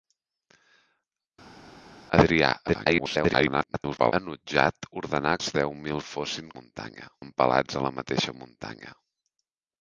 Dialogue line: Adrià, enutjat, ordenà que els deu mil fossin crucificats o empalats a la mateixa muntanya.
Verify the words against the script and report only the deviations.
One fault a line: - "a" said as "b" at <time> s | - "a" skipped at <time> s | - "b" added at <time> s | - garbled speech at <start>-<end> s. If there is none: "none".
- garbled speech at 2.7-4.1 s
- "que" skipped at 5.3 s
- "crucificats" said as "muntanya" at 6.6 s